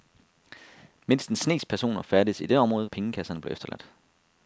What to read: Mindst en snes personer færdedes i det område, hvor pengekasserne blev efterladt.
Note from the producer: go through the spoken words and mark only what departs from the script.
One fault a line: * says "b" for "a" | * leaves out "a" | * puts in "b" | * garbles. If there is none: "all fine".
* leaves out "hvor"